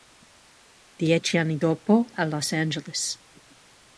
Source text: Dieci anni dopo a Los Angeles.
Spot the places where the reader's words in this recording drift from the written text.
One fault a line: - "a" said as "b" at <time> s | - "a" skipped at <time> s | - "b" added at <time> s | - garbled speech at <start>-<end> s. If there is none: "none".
none